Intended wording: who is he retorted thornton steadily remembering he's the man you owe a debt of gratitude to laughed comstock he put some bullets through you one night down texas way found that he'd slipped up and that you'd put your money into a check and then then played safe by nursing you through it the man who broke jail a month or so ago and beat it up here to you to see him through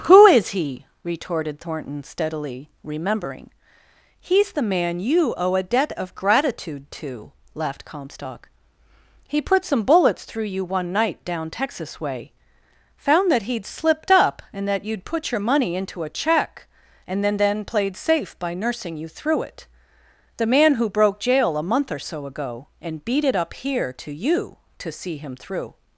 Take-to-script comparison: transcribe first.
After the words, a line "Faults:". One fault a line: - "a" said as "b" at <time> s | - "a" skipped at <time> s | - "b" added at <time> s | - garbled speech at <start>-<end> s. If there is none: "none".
who is he retorted thornton steadily remembering he's the man you owe a debt of gratitude to laughed comstock he put some bullets through you one night down texas way found that he'd slipped up and that you'd put your money into a check and then then played safe by nursing you through it the man who broke jail a month or so ago and beat it up here to you to see him through
Faults:
none